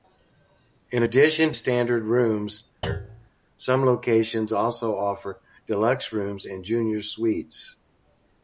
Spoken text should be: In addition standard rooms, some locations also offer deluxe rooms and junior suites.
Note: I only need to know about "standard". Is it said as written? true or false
true